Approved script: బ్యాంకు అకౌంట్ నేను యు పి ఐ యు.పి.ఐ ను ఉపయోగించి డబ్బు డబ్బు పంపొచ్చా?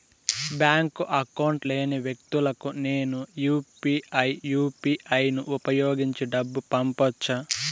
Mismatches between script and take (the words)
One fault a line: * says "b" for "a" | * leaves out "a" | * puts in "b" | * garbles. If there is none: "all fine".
* puts in "లేని వ్యక్తులకు"
* leaves out "డబ్బు"